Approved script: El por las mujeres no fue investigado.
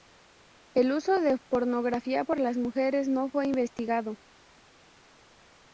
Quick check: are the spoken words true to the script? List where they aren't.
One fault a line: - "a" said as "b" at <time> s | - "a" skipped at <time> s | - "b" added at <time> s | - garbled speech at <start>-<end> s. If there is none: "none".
- "uso de pornografía" added at 0.9 s